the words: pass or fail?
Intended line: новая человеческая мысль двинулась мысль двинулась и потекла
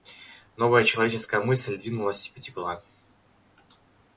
fail